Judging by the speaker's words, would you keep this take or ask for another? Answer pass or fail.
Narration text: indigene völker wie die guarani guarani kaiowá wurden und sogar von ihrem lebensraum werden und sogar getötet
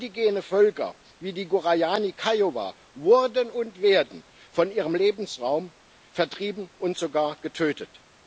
fail